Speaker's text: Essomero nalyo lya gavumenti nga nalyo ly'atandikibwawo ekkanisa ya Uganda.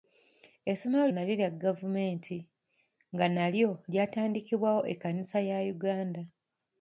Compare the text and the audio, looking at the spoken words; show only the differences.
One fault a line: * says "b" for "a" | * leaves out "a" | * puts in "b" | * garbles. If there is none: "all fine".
all fine